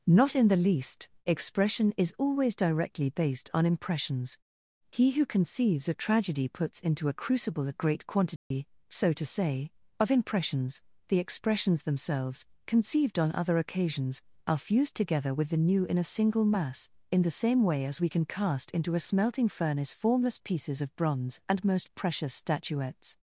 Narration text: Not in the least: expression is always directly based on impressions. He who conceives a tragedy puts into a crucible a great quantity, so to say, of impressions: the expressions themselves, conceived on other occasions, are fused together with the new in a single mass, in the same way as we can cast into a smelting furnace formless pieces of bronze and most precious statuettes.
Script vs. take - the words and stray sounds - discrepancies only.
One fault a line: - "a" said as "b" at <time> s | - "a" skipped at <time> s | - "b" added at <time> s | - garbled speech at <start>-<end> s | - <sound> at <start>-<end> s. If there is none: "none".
- dropout at 8.4-8.5 s